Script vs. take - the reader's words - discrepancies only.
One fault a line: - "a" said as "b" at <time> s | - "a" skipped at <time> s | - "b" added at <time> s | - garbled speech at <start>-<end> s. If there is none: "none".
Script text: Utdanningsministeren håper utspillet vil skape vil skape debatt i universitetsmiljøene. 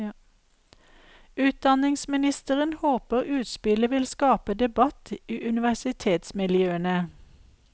- "vil skape" skipped at 4.5 s